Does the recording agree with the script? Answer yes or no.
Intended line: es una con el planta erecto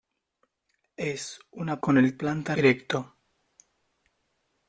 yes